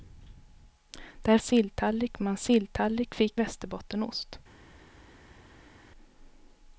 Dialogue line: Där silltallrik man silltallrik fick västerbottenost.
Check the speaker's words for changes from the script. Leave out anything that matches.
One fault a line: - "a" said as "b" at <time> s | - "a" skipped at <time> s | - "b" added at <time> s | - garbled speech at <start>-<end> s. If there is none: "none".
none